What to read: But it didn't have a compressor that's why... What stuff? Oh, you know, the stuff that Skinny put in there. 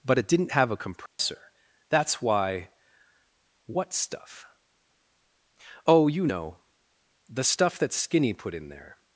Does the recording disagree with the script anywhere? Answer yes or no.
no